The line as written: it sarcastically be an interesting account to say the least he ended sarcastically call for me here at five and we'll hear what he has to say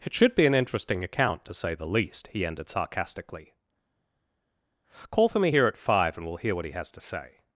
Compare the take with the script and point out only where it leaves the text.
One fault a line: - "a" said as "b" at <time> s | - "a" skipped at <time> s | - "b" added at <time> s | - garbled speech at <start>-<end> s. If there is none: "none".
- "sarcastically" said as "should" at 0.1 s